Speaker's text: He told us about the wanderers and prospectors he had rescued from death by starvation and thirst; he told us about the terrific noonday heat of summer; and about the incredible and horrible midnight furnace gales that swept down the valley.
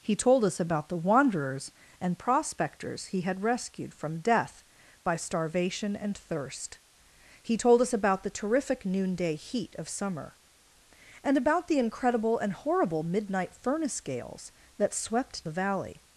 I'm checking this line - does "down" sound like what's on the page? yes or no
no